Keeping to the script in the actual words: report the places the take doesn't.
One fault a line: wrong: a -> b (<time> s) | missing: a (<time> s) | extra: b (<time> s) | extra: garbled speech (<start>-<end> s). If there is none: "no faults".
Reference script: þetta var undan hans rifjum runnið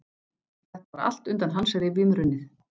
extra: allt (1.1 s)